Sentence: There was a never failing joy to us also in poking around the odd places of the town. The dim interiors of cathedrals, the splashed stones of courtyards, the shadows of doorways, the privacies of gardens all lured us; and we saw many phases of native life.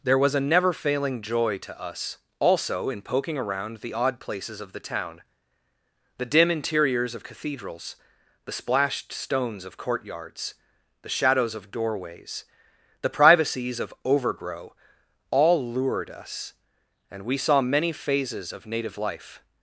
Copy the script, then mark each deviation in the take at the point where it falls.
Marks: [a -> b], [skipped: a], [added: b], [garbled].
There was a never failing joy to us also in poking around the odd places of the town. The dim interiors of cathedrals, the splashed stones of courtyards, the shadows of doorways, the privacies of [gardens -> overgrow] all lured us; and we saw many phases of native life.